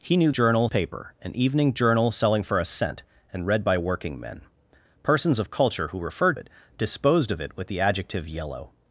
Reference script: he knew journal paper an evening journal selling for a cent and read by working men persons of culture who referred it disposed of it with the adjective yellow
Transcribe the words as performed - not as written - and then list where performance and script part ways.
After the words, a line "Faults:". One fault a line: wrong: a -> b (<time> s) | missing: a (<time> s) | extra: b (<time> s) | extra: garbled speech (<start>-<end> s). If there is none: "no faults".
he knew journal paper an evening journal selling for a cent and read by working men persons of culture who referred it disposed of it with the adjective yellow
Faults:
no faults